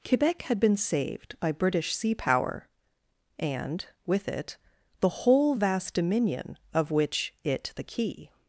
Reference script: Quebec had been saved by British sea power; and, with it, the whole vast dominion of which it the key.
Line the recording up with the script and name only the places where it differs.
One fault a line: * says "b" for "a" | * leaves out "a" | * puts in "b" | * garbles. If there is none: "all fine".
all fine